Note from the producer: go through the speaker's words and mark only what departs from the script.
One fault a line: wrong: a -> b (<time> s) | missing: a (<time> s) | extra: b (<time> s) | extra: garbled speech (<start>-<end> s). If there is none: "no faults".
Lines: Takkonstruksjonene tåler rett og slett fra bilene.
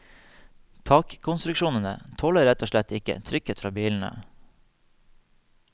extra: ikke trykket (3.0 s)